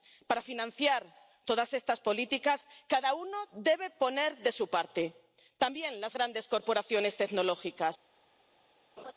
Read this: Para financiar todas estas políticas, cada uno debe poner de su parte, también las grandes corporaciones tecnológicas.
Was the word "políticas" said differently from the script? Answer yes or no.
no